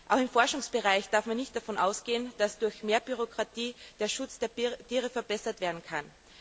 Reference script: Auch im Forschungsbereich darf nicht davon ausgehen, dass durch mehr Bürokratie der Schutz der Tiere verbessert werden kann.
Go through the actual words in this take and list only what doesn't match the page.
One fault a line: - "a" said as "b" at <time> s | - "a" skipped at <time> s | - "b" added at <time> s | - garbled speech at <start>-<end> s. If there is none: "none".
- "man" added at 1.3 s